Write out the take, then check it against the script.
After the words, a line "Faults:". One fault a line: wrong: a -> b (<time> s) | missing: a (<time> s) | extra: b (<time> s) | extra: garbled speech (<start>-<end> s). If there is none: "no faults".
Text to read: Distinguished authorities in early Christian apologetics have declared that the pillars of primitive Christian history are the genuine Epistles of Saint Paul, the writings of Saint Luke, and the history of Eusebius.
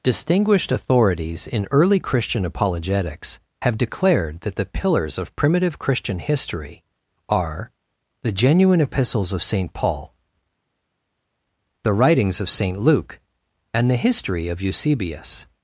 Distinguished authorities in early Christian apologetics have declared that the pillars of primitive Christian history are the genuine Epistles of Saint Paul, the writings of Saint Luke, and the history of Eusebius.
Faults:
no faults